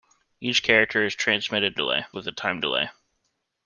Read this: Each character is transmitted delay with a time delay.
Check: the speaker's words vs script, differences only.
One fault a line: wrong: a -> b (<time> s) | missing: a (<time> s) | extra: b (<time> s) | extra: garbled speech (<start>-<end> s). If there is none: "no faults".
no faults